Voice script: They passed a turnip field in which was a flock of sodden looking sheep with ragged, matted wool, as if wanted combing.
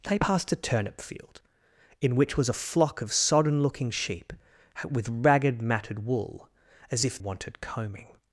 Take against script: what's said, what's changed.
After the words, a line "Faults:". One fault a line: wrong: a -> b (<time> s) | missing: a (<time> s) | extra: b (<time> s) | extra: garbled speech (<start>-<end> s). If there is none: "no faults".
They passed a turnip field in which was a flock of sodden looking sheep with ragged, matted wool, as if wanted combing.
Faults:
no faults